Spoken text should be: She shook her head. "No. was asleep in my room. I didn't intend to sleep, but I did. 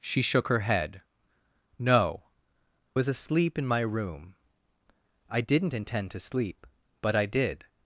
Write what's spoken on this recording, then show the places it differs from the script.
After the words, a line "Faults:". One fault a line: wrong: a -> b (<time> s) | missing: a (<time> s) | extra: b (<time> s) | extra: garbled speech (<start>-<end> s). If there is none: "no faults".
She shook her head. "No. was asleep in my room. I didn't intend to sleep, but I did.
Faults:
no faults